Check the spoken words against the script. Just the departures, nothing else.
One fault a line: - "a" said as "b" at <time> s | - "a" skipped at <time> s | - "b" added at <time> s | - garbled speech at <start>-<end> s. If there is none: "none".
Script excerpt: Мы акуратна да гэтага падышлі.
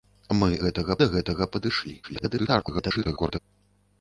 - "акуратна" said as "гэтага" at 0.6 s
- garbled speech at 2.0-3.4 s